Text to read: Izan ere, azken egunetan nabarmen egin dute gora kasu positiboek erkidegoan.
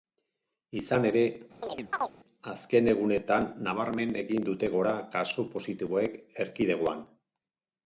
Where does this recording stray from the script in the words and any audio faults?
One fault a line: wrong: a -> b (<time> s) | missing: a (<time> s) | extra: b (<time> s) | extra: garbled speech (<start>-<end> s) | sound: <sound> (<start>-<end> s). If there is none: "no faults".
sound: chirp (1.6-2.1 s)